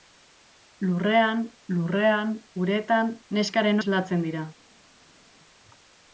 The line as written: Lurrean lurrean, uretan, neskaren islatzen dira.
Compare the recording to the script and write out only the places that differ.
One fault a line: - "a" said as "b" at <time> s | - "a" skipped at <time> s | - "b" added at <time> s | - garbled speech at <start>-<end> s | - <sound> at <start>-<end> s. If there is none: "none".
none